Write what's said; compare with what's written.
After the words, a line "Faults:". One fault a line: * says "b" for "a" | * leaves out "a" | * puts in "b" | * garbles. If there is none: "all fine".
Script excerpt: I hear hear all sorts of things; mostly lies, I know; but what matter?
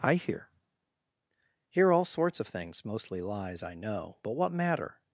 I hear hear all sorts of things; mostly lies, I know; but what matter?
Faults:
all fine